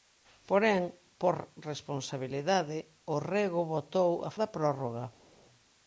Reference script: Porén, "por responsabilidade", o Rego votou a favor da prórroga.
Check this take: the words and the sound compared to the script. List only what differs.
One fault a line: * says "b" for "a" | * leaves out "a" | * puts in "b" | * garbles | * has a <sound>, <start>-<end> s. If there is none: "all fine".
* leaves out "favor"